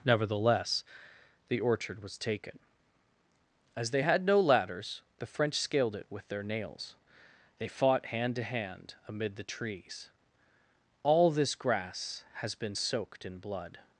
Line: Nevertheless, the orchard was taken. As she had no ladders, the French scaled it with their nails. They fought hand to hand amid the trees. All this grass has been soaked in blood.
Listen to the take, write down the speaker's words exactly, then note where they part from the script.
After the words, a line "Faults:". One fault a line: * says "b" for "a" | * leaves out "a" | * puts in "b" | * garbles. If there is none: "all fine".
Nevertheless, the orchard was taken. As they had no ladders, the French scaled it with their nails. They fought hand to hand amid the trees. All this grass has been soaked in blood.
Faults:
* says "they" for "she"